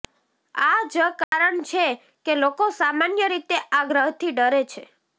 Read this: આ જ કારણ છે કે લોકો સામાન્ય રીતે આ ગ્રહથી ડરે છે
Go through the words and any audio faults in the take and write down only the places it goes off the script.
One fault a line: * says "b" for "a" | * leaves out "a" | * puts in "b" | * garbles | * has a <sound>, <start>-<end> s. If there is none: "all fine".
* has a dropout, 1.2-1.3 s